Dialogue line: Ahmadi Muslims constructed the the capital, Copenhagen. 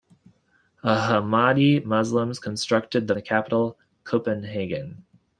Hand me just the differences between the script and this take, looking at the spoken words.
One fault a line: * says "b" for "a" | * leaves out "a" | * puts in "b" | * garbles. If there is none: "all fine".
all fine